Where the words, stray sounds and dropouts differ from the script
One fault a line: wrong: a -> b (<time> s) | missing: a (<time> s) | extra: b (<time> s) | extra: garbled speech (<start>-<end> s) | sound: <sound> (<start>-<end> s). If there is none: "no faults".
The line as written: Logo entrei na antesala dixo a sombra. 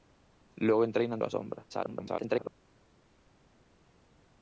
missing: antesala dixo (1.2 s)
extra: garbled speech (1.7-2.5 s)